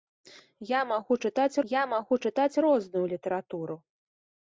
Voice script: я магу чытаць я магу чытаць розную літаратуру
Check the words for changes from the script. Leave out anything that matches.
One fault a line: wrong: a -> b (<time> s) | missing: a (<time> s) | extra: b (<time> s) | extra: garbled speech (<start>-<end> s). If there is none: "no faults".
no faults